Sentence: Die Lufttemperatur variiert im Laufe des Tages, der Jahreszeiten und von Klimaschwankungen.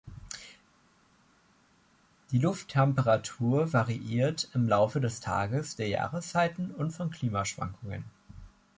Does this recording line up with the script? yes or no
yes